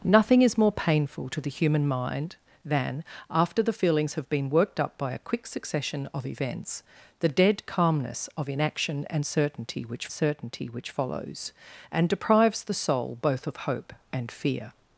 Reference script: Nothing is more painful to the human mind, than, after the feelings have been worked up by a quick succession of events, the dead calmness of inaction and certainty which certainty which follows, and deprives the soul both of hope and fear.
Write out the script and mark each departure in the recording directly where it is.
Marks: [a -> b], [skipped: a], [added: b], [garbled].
Nothing is more painful to the human mind, than, after the feelings have been worked up by a quick succession of events, the dead calmness of inaction and certainty which certainty which follows, and deprives the soul both of hope and fear.